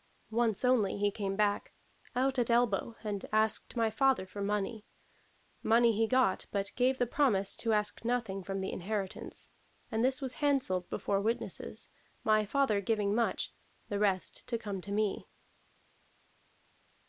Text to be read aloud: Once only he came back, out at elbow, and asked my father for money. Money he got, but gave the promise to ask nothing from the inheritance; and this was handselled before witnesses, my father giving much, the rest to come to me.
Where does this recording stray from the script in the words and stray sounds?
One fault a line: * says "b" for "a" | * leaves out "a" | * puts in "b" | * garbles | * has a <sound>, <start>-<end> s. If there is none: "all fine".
all fine